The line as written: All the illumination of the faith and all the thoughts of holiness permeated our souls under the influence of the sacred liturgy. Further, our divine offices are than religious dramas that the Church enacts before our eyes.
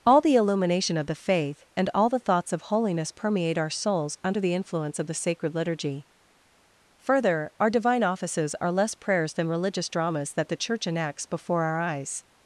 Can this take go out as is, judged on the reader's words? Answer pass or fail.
fail